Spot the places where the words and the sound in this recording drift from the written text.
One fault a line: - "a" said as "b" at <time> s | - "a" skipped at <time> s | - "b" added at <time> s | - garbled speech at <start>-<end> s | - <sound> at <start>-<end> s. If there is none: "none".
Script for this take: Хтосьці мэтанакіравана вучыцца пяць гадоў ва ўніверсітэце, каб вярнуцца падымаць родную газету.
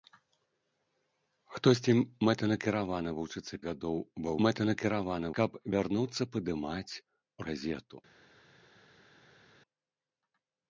- "пяць" skipped at 3.6 s
- "ўніверсітэце" said as "мэтанакіравана" at 4.5 s
- "родную" skipped at 6.9 s